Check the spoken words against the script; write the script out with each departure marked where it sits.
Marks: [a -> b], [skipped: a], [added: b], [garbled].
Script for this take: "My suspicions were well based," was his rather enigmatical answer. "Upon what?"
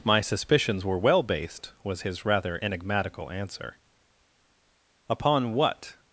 "My suspicions were well based," was his rather enigmatical answer. "Upon what?"